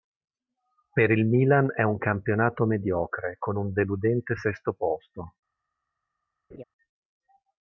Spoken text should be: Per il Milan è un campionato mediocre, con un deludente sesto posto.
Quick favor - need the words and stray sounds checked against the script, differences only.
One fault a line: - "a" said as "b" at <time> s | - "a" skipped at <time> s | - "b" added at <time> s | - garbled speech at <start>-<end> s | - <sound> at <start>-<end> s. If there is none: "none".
- laugh at 6.5-6.6 s